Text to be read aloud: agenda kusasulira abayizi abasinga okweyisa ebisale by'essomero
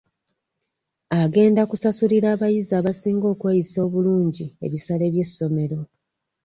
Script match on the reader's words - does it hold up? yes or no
no